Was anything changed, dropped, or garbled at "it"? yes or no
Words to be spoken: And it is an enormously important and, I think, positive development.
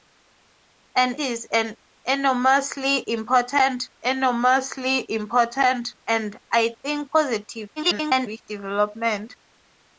yes